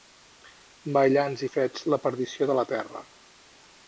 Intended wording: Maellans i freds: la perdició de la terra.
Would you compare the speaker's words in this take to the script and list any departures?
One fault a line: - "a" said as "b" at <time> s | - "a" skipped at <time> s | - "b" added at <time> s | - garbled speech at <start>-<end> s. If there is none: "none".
none